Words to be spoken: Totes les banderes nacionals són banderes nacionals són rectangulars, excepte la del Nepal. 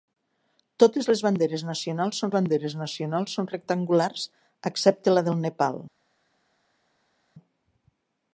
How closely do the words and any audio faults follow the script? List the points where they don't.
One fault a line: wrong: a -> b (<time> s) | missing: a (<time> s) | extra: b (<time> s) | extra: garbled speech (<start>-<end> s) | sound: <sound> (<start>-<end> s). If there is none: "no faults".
no faults